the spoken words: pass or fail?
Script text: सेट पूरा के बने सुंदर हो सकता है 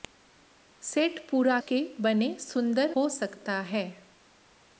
pass